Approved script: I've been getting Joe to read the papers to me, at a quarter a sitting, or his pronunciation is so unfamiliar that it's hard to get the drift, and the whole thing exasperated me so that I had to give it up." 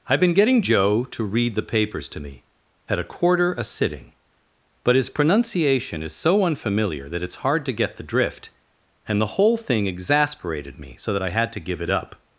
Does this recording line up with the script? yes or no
no